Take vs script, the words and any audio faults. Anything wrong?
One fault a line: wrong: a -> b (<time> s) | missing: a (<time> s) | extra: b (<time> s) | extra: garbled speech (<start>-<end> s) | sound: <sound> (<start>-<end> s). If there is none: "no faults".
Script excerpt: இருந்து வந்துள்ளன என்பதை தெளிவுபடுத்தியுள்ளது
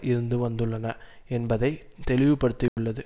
sound: dropout (2.7-2.8 s)